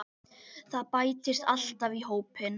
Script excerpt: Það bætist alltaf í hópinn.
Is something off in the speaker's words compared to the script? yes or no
no